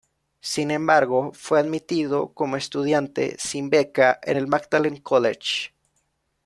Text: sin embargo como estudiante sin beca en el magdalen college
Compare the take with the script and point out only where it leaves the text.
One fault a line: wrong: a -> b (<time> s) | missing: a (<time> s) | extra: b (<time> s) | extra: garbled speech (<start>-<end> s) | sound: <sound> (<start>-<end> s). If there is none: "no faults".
extra: fue admitido (1.4 s)